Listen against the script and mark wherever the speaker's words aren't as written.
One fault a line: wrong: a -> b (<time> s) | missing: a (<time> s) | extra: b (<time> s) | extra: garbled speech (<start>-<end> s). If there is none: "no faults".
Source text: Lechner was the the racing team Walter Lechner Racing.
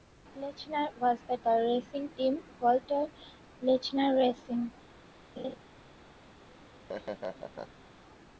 no faults